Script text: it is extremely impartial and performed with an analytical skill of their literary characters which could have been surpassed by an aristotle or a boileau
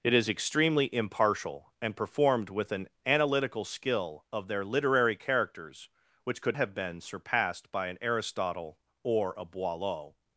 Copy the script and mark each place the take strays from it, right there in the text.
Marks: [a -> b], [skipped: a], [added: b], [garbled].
it is extremely impartial and performed with an analytical skill of their literary characters which could have been surpassed by an aristotle or a boileau